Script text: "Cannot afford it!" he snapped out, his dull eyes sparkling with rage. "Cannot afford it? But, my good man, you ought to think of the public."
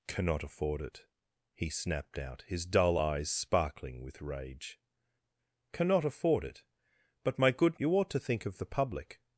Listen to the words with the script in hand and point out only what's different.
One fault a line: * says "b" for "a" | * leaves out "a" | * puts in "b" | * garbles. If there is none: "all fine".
* leaves out "man"